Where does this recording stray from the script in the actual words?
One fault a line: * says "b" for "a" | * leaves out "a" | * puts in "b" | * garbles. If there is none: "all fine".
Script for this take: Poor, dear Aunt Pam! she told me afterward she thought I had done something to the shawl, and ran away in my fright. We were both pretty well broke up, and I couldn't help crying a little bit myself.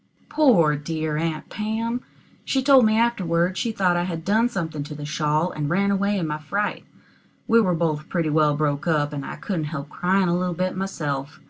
all fine